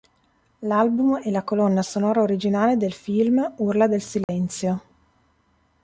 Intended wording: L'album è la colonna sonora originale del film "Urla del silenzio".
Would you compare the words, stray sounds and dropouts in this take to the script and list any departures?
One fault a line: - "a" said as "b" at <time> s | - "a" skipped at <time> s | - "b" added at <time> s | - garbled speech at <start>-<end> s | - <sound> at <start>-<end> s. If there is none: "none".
- dropout at 4.2-4.3 s